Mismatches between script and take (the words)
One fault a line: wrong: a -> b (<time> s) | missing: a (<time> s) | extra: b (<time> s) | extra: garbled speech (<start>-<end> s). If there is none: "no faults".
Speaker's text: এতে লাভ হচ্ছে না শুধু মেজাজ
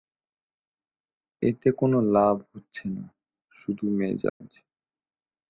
extra: কোনো (1.7 s)